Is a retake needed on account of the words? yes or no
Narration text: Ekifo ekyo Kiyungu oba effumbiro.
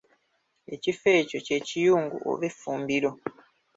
yes